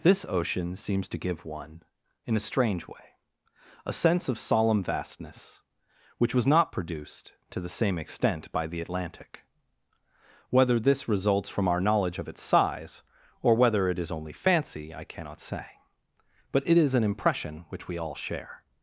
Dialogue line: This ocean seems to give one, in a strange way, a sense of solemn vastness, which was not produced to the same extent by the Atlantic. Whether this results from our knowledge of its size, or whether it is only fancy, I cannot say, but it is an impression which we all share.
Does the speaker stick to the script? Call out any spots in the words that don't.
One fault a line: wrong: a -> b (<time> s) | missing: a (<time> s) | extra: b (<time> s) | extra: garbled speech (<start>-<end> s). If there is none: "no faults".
no faults